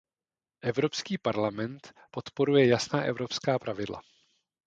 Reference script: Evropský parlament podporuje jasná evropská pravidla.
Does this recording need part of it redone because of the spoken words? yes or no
no